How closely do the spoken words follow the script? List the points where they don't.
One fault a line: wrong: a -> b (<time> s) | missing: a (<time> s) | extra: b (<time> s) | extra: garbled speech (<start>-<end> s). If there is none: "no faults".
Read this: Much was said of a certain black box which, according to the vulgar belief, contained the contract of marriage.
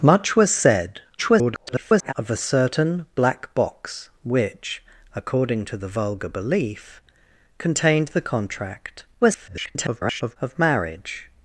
extra: garbled speech (1.2-2.1 s)
extra: garbled speech (9.2-10.4 s)